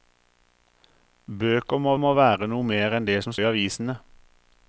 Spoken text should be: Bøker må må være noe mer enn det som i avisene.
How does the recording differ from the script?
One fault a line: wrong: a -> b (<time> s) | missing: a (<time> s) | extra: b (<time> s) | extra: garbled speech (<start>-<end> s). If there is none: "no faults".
no faults